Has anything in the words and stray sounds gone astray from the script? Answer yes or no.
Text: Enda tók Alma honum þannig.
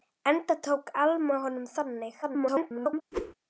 yes